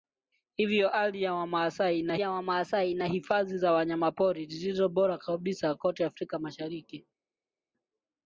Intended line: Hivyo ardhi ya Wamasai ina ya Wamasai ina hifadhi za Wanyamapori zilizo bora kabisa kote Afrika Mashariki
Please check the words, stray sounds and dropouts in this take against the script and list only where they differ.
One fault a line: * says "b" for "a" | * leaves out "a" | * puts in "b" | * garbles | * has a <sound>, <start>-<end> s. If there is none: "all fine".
all fine